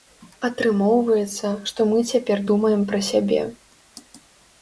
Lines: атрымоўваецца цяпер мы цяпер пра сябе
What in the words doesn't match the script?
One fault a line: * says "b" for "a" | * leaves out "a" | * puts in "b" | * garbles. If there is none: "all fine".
* says "што" for "цяпер"
* puts in "думаем"